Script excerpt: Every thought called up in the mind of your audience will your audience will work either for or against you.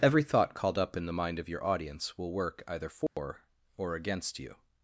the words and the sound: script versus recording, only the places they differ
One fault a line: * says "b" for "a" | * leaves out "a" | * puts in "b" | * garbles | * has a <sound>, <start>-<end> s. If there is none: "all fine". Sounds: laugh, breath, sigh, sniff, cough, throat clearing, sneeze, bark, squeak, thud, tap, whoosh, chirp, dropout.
* leaves out "your audience will"
* has a dropout, 3.1-3.2 s